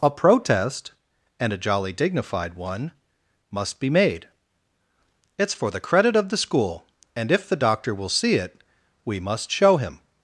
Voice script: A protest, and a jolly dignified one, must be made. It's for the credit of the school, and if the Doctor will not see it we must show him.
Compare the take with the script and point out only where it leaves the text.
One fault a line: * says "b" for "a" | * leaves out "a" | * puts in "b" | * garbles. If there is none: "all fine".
* leaves out "not"